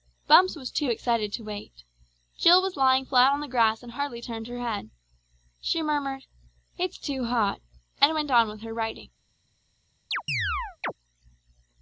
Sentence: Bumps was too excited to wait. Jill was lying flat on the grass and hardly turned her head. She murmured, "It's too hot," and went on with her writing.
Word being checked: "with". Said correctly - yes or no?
yes